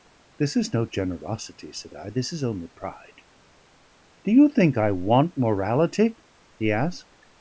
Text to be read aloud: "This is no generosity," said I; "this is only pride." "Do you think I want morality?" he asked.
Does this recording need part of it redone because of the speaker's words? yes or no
no